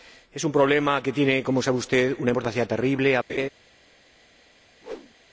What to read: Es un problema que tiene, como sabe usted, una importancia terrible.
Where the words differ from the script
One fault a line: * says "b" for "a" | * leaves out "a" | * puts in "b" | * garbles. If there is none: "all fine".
all fine